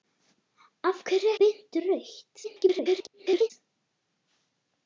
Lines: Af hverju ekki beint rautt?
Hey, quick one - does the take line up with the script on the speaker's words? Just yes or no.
no